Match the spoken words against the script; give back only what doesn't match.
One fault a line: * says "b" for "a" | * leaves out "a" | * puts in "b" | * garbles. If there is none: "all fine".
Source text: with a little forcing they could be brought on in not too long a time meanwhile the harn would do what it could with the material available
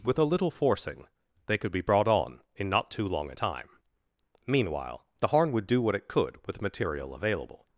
* leaves out "the"